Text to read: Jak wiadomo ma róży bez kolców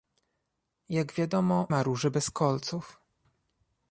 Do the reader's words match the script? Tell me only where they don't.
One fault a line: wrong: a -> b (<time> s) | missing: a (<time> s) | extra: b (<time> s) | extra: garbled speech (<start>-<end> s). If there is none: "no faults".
no faults